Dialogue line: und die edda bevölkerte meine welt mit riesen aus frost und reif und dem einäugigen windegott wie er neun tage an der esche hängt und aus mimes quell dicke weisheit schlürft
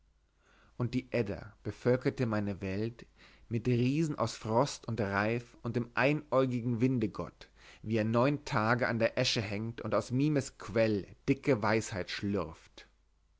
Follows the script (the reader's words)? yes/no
yes